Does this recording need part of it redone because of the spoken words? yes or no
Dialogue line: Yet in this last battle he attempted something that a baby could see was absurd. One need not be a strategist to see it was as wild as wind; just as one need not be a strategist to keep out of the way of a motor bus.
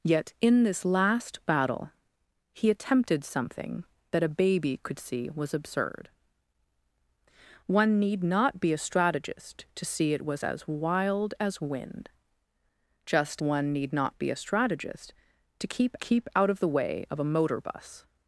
yes